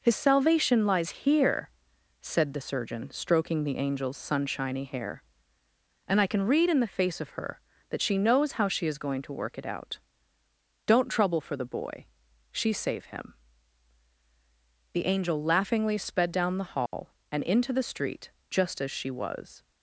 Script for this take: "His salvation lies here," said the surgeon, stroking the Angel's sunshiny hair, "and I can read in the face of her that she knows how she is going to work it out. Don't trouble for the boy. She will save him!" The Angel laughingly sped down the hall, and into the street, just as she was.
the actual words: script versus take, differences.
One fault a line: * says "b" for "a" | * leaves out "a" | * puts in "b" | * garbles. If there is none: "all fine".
* leaves out "will"